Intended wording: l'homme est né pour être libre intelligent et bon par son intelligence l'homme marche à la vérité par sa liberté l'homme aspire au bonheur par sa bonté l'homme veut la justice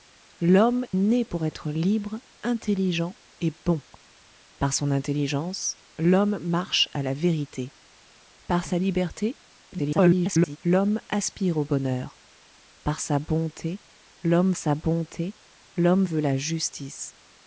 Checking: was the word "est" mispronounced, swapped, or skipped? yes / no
yes